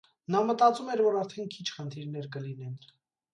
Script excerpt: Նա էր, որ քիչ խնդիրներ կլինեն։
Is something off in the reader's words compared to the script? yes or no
yes